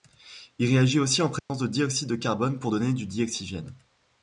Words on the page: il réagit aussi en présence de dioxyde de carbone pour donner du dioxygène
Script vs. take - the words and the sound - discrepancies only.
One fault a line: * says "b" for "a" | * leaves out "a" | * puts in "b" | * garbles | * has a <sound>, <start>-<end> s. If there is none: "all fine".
* has a dropout, 1.4-1.5 s